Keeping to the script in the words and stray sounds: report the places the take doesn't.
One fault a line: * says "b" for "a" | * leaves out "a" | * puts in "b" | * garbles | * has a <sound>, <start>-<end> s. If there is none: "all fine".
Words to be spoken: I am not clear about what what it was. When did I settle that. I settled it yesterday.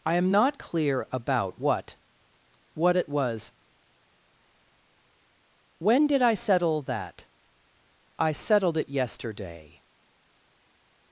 all fine